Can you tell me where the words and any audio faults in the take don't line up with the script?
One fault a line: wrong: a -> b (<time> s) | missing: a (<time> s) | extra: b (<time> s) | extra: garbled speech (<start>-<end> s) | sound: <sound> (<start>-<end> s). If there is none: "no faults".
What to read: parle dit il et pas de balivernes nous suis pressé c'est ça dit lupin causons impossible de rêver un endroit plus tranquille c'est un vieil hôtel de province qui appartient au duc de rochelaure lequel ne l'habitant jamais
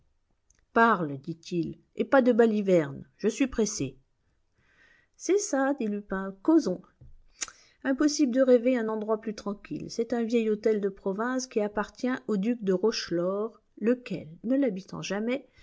wrong: nous -> je (3.2 s)